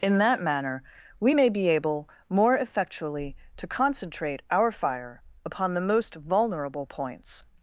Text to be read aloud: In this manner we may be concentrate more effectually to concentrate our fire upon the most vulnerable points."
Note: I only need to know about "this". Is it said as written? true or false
false